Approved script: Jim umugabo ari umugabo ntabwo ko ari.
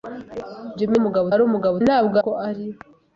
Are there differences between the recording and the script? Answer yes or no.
no